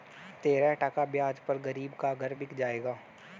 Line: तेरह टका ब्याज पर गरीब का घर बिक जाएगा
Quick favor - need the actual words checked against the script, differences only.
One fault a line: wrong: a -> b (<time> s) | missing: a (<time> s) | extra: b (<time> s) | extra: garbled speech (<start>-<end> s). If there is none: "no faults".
no faults